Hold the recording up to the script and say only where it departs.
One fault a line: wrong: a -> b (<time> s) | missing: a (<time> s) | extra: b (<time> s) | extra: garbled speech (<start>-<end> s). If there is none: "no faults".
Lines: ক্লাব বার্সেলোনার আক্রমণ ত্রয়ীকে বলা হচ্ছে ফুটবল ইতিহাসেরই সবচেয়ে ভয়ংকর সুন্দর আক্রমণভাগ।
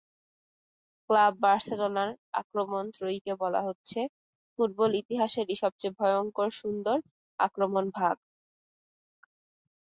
no faults